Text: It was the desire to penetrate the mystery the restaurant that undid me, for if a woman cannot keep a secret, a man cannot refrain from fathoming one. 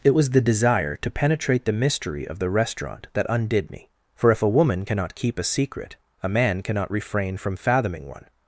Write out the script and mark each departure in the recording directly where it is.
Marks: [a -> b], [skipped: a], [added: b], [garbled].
It was the desire to penetrate the mystery [added: of] the restaurant that undid me, for if a woman cannot keep a secret, a man cannot refrain from fathoming one.